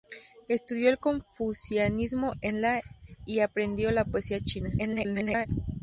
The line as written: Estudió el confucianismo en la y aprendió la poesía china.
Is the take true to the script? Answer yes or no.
no